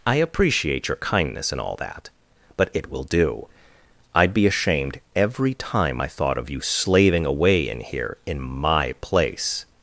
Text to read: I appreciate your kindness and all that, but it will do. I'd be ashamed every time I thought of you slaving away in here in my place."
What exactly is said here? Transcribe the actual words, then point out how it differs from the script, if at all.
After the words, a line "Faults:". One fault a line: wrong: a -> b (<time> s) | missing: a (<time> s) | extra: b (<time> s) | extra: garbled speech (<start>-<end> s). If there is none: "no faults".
I appreciate your kindness and all that, but it will do. I'd be ashamed every time I thought of you slaving away in here in my place."
Faults:
no faults